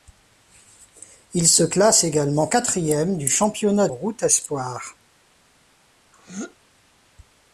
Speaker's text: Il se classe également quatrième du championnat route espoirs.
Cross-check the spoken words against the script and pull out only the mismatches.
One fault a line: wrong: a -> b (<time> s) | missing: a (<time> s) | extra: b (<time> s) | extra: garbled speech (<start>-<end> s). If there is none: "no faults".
no faults